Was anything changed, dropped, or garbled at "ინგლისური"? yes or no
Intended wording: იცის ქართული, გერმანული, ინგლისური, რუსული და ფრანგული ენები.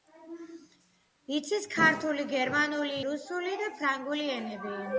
yes